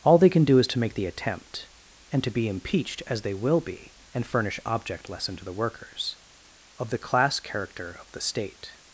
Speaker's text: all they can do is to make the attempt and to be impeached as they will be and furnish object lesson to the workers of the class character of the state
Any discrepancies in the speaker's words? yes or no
no